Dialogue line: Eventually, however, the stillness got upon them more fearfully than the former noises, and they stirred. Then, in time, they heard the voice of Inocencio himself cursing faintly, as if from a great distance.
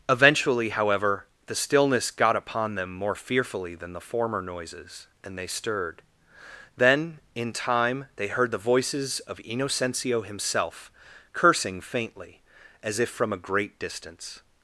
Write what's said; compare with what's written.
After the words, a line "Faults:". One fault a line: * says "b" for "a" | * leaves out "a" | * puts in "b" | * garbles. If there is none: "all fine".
Eventually, however, the stillness got upon them more fearfully than the former noises, and they stirred. Then, in time, they heard the voices of Inocencio himself cursing faintly, as if from a great distance.
Faults:
* says "voices" for "voice"